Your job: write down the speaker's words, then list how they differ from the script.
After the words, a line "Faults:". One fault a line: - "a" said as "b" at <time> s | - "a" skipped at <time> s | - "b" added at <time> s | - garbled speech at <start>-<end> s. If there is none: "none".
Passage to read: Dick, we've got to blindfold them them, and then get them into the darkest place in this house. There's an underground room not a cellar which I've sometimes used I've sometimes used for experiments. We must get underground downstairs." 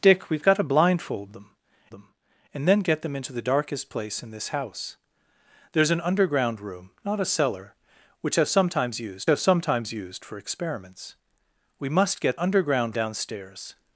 Dick, we've got to blindfold them them, and then get them into the darkest place in this house. There's an underground room not a cellar which I've sometimes used I've sometimes used for experiments. We must get underground downstairs."
Faults:
none